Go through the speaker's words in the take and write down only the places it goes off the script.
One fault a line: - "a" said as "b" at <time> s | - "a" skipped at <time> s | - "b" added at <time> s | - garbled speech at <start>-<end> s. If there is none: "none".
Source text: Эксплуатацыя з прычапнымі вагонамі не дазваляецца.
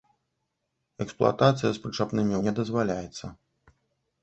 - "вагонамі" skipped at 2.4 s